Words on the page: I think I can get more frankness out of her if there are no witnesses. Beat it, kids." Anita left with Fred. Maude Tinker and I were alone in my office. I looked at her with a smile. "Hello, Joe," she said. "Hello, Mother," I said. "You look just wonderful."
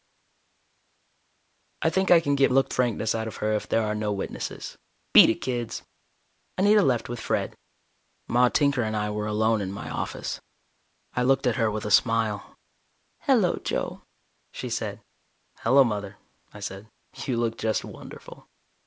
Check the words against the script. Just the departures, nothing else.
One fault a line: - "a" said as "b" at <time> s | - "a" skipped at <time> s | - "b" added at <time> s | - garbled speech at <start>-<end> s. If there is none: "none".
- "more" said as "looked" at 2.5 s